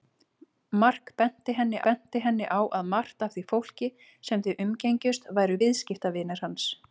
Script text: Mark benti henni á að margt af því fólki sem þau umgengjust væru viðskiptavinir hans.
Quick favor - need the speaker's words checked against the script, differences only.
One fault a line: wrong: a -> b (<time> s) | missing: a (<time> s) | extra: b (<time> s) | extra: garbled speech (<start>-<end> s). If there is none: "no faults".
extra: benti henni (1.9 s)